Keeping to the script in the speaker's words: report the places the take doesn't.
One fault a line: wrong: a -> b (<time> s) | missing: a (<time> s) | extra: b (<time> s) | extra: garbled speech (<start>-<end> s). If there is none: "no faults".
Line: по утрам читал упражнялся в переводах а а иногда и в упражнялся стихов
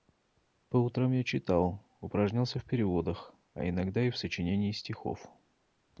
extra: я (1.1 s)
missing: а (3.7 s)
wrong: упражнялся -> сочинении (4.2 s)